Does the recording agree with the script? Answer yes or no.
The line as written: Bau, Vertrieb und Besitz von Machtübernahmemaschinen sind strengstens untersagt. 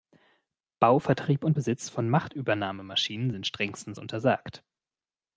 yes